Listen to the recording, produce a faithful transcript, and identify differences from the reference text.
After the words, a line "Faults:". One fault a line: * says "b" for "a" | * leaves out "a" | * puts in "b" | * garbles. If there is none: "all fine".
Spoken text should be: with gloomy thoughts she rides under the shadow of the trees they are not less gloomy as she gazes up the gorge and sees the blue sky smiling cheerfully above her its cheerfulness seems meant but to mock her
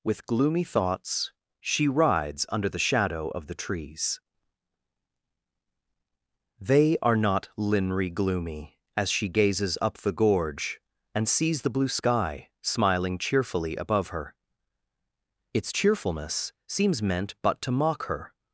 with gloomy thoughts she rides under the shadow of the trees they are not linry gloomy as she gazes up the gorge and sees the blue sky smiling cheerfully above her its cheerfulness seems meant but to mock her
Faults:
* says "linry" for "less"